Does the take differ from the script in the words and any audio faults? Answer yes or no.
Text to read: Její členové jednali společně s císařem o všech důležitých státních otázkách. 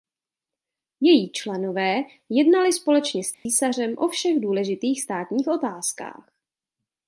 yes